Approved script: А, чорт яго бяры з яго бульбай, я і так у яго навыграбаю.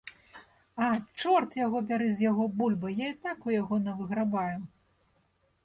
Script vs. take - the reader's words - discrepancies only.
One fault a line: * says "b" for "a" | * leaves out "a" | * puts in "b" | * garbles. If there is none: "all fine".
all fine